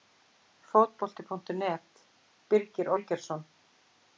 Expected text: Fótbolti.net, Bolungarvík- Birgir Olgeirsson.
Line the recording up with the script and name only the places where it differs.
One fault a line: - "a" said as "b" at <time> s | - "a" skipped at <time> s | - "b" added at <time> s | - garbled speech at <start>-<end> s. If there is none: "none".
- "Bolungarvík" skipped at 2.0 s